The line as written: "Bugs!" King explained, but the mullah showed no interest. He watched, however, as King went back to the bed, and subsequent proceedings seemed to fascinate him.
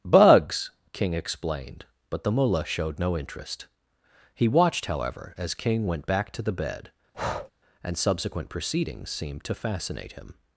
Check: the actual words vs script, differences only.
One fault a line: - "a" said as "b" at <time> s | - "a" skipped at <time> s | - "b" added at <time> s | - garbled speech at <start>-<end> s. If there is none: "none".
none